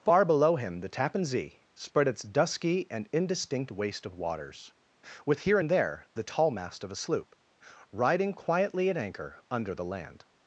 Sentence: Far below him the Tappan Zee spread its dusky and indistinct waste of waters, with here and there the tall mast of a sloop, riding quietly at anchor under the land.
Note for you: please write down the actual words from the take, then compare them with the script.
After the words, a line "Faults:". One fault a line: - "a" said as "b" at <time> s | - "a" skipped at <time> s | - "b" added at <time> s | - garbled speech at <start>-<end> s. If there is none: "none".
Far below him the Tappan Zee spread its dusky and indistinct waste of waters, with here and there the tall mast of a sloop, riding quietly at anchor under the land.
Faults:
none